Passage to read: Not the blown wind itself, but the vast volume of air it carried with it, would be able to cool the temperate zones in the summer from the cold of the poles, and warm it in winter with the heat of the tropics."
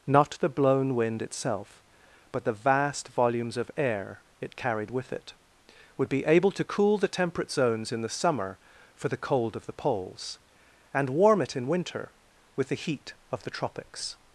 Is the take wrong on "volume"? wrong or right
wrong